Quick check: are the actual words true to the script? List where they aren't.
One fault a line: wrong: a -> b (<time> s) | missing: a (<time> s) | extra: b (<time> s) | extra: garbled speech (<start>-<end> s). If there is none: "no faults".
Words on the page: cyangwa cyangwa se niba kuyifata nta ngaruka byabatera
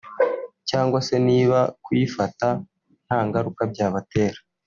missing: cyangwa (1.0 s)